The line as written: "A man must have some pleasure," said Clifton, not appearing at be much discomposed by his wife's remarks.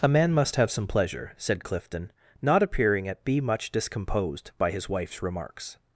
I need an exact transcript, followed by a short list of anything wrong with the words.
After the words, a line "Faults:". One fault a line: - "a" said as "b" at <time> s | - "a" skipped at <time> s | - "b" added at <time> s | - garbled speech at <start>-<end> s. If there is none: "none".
"A man must have some pleasure," said Clifton, not appearing at be much discomposed by his wife's remarks.
Faults:
none